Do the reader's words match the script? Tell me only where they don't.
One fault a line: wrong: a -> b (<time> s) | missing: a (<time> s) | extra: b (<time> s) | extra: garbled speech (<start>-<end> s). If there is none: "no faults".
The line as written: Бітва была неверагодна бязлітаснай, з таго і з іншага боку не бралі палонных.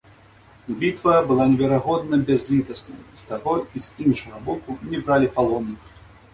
no faults